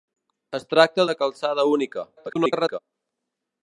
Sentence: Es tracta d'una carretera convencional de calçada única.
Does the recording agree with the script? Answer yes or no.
no